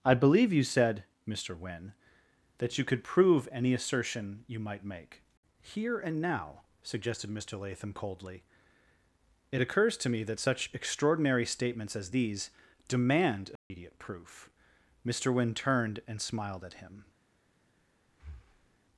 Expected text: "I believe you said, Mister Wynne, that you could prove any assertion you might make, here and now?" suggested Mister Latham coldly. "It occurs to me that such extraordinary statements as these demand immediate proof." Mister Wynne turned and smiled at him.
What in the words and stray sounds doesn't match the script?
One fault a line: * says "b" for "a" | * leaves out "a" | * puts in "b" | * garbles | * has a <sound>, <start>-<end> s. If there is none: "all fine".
* has a dropout, 13.6-13.7 s
* has a breath, 18.1-18.8 s